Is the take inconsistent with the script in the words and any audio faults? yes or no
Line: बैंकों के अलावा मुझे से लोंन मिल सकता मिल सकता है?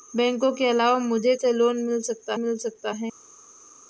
no